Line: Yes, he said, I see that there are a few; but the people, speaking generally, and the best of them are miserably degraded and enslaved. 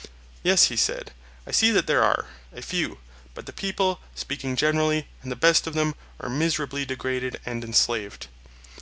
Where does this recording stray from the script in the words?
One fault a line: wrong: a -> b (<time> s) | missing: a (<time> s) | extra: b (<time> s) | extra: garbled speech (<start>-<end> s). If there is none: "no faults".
no faults